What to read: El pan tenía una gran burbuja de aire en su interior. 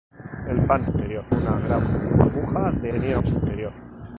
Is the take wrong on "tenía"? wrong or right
wrong